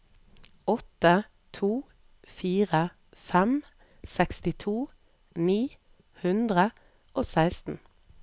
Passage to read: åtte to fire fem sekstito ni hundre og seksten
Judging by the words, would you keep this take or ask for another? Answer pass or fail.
pass